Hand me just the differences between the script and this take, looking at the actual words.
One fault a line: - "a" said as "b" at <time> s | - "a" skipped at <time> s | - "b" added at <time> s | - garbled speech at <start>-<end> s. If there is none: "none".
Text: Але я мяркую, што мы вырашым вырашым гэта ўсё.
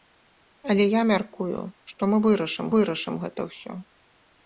none